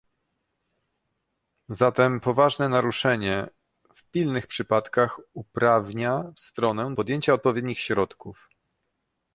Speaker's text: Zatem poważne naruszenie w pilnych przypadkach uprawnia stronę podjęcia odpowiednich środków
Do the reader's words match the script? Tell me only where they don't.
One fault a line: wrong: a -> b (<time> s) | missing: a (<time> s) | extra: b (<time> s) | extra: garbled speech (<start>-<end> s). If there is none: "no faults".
no faults